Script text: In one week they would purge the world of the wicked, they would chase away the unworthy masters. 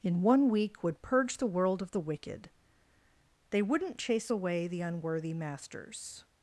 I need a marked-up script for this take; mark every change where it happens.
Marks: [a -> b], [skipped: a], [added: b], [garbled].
In one week [skipped: they] would purge the world of the wicked, they [would -> wouldn't] chase away the unworthy masters.